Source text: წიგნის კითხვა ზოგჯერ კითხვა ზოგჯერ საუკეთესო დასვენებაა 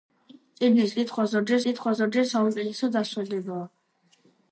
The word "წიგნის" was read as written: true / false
true